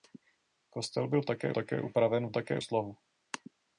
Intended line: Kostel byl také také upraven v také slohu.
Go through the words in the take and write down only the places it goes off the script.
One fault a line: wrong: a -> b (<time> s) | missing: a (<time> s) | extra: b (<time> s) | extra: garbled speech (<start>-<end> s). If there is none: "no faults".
no faults